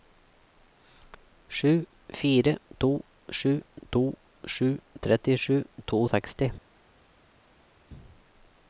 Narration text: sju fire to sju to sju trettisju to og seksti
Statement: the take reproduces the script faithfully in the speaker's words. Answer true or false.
true